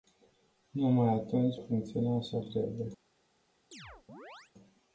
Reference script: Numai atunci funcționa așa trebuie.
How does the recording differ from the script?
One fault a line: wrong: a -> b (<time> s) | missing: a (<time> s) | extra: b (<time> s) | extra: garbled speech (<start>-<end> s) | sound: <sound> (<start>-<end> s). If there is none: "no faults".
sound: chirp (3.7-4.5 s)